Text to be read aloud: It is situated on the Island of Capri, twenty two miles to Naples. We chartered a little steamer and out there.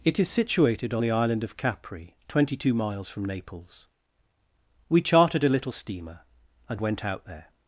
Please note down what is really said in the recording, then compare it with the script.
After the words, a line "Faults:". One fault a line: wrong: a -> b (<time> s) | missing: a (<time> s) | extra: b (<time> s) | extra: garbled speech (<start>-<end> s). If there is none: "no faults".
It is situated on the Island of Capri, twenty two miles from Naples. We chartered a little steamer and went out there.
Faults:
wrong: to -> from (3.1 s)
extra: went (6.8 s)